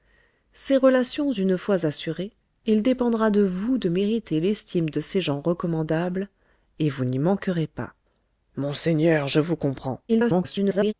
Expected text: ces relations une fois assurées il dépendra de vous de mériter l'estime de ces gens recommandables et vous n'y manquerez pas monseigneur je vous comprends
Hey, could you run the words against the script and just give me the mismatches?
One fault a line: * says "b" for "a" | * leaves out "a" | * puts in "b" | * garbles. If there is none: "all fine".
* garbles